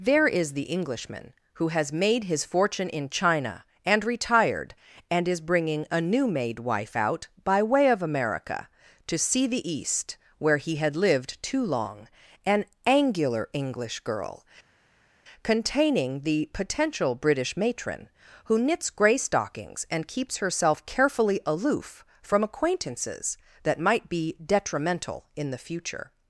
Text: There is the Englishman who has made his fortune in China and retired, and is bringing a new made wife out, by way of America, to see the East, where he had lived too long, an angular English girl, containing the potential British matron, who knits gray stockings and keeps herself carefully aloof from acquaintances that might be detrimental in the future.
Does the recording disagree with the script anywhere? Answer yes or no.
no